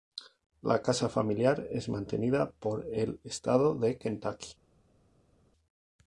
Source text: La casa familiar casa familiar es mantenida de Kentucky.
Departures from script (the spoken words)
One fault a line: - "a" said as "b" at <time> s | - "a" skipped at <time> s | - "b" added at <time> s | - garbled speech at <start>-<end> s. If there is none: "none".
- "casa familiar es mantenida" said as "es mantenida por el estado" at 1.7 s